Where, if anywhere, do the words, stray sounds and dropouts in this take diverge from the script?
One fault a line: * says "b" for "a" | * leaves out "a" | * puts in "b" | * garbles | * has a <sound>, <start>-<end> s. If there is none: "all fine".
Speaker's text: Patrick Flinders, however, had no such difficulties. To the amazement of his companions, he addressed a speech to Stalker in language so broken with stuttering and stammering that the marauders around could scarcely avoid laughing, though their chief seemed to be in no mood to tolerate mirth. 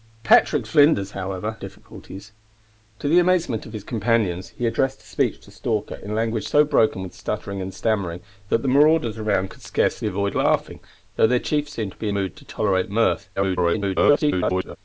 * leaves out "had no such"
* leaves out "in no"
* garbles